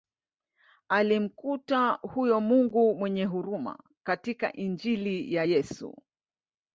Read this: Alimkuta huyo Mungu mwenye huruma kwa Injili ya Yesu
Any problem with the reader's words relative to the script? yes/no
yes